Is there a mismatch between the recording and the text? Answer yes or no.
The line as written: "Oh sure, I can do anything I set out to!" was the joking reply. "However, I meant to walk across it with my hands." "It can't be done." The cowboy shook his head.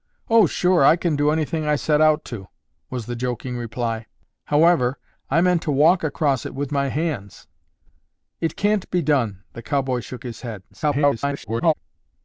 yes